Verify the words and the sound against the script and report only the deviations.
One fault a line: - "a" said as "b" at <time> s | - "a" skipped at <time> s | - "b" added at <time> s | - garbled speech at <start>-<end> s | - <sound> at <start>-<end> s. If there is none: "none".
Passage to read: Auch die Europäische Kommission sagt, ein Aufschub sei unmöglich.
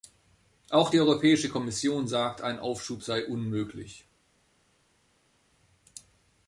none